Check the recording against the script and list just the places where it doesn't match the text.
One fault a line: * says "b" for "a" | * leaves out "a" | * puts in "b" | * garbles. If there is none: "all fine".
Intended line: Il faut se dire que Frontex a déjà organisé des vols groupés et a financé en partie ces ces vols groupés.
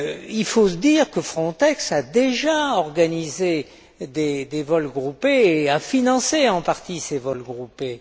* leaves out "ces"